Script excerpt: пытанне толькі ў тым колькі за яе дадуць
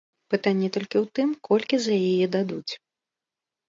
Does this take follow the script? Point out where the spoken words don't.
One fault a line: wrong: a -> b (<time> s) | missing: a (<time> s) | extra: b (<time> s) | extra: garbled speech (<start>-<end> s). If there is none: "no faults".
no faults